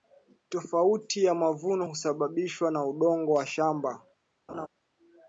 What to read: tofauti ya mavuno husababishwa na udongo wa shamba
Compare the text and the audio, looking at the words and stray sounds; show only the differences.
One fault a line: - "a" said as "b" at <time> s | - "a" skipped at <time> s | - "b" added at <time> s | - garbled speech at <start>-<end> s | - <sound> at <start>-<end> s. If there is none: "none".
- laugh at 4.5-4.7 s